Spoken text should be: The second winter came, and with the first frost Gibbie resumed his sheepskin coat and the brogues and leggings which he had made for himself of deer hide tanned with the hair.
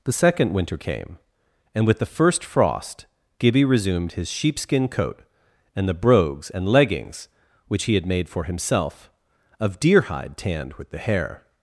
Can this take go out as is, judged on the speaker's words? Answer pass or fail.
pass